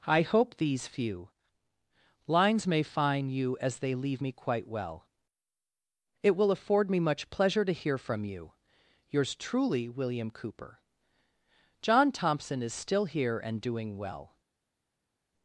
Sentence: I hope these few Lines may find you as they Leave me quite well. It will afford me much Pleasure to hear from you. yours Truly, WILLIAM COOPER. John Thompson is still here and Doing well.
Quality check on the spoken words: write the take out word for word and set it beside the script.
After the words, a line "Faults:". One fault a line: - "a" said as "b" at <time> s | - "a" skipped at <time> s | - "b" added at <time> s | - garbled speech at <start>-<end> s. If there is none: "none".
I hope these few Lines may find you as they Leave me quite well. It will afford me much Pleasure to hear from you. yours Truly, WILLIAM COOPER. John Thompson is still here and Doing well.
Faults:
none